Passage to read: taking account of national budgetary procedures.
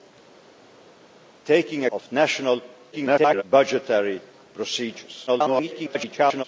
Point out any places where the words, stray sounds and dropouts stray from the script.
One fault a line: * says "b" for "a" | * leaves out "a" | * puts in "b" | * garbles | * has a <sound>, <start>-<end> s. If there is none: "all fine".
* leaves out "account"
* garbles
* garbles